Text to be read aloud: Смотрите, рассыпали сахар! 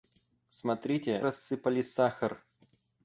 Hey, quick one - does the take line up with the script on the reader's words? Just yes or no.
yes